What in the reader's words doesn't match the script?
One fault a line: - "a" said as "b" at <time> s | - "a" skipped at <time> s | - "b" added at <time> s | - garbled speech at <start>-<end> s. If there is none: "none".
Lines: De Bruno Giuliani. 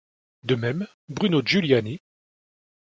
- "même" added at 0.6 s